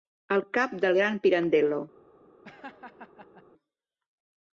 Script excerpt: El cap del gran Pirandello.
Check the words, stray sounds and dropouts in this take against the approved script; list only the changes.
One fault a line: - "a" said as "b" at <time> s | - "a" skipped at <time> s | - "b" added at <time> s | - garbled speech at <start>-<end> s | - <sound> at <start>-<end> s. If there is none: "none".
- laugh at 2.4-3.4 s